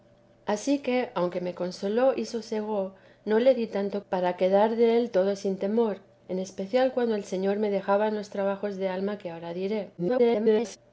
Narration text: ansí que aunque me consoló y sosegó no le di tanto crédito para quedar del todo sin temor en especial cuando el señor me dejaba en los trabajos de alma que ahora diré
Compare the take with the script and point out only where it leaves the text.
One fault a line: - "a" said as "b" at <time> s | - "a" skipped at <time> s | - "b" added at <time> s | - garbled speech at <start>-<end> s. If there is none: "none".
- "crédito" skipped at 4.0 s
- garbled speech at 10.0-10.8 s